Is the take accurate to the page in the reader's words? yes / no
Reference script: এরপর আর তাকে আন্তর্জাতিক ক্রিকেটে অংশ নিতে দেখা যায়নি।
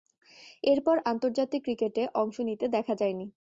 no